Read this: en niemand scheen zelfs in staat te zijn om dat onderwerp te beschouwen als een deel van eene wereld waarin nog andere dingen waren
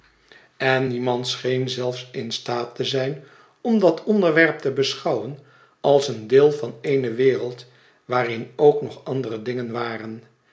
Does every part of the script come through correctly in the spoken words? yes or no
no